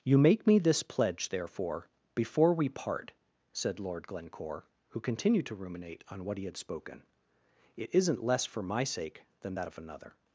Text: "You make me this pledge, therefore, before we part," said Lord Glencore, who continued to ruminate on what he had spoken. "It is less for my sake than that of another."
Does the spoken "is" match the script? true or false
false